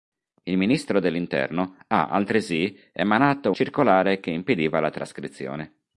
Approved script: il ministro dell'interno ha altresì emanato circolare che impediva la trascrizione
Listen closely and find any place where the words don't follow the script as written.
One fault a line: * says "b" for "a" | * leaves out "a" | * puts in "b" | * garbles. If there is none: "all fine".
all fine